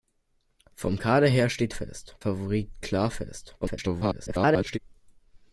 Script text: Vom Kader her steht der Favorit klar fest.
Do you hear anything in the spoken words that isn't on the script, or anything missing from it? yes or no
yes